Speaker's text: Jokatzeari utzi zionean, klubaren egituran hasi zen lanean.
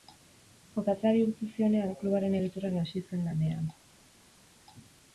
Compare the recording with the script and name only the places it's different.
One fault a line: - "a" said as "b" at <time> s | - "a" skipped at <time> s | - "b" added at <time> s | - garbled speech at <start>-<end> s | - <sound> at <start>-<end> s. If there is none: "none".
none